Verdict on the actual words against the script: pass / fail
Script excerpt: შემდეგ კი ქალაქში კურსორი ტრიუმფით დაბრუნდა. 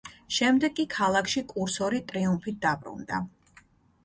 pass